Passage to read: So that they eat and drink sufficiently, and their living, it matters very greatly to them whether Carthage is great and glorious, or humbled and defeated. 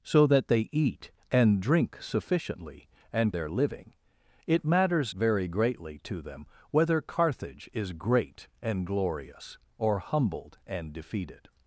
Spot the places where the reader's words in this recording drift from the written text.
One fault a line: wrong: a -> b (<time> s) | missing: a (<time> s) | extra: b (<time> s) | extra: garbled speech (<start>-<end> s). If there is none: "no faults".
no faults